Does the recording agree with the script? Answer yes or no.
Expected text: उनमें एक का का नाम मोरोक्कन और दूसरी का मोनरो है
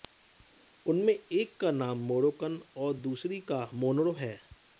no